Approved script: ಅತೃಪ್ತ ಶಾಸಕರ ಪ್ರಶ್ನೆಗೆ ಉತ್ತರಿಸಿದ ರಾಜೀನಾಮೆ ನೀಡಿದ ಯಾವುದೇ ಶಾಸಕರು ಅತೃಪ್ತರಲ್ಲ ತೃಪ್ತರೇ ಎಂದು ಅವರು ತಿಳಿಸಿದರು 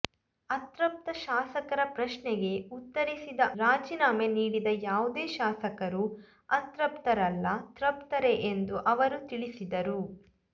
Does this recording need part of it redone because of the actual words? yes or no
no